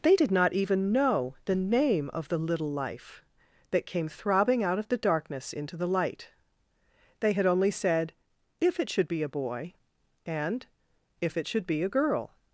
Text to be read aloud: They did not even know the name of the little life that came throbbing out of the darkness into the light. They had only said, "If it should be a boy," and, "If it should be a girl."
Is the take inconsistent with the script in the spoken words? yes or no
no